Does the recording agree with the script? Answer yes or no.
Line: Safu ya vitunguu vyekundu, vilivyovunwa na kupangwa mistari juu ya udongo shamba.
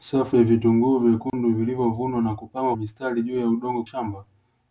yes